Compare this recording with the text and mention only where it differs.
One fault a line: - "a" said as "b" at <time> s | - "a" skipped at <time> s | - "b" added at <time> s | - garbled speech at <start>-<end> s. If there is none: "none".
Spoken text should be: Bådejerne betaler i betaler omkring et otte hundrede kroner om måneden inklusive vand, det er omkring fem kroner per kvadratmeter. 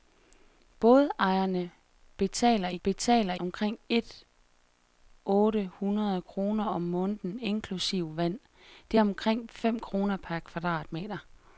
none